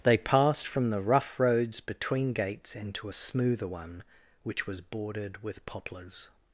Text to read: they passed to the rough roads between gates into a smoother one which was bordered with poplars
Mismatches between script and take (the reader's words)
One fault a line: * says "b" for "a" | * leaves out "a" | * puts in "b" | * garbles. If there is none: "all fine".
* says "from" for "to"